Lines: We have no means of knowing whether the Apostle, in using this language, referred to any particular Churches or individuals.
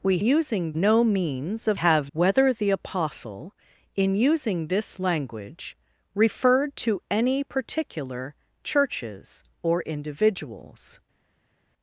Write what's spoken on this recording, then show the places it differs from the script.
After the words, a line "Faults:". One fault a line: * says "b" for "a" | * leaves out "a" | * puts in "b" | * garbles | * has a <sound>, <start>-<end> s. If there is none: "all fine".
We using no means of have whether the Apostle, in using this language, referred to any particular Churches or individuals.
Faults:
* says "using" for "have"
* says "have" for "knowing"